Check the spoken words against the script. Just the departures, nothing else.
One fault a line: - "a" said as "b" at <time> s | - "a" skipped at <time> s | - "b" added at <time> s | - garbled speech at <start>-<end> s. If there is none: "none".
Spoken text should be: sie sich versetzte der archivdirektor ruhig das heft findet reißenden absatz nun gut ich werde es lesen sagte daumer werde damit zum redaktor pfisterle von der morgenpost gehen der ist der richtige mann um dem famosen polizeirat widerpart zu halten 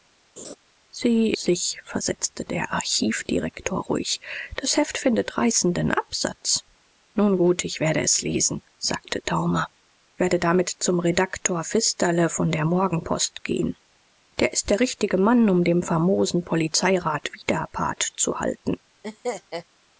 none